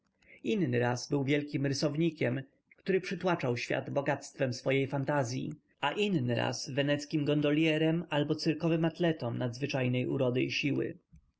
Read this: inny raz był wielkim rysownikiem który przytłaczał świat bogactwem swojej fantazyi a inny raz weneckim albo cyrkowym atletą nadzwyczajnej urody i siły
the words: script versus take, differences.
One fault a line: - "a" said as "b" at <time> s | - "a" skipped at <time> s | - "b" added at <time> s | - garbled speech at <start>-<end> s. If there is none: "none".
- "gondolierem" added at 7.2 s